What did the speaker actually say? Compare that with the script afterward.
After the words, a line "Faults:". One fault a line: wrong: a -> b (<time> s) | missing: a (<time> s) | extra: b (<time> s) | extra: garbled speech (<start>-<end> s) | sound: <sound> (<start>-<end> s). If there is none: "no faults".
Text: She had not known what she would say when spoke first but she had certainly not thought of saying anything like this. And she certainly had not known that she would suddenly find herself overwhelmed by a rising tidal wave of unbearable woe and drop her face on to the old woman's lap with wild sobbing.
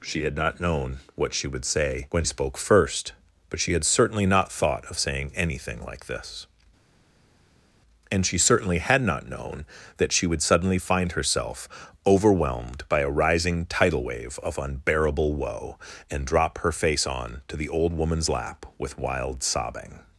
She had not known what she would say when spoke first but she had certainly not thought of saying anything like this. And she certainly had not known that she would suddenly find herself overwhelmed by a rising tidal wave of unbearable woe and drop her face on to the old woman's lap with wild sobbing.
Faults:
no faults